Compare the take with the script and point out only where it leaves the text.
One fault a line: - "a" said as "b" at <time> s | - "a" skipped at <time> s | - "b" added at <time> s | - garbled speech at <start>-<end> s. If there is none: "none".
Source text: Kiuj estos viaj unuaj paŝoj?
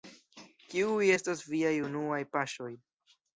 none